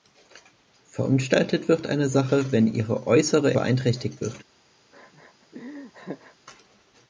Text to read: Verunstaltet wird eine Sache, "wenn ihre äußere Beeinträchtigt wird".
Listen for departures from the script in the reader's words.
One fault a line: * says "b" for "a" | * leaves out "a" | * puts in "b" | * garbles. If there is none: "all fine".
all fine